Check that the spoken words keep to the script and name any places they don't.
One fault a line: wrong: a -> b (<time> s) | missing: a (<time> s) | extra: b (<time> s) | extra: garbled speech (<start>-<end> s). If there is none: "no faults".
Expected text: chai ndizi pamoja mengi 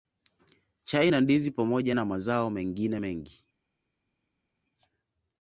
extra: na (1.1 s)
extra: na mazao mengine (1.9 s)